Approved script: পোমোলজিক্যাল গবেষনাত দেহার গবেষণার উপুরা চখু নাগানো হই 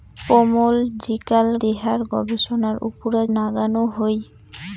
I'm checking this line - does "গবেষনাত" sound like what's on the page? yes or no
no